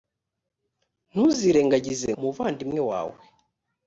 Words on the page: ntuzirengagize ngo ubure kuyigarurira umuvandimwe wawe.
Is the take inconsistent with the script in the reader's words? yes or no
yes